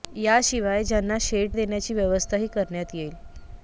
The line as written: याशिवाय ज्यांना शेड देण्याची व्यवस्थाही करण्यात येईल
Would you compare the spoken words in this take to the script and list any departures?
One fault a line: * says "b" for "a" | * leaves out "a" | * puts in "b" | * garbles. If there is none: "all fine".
all fine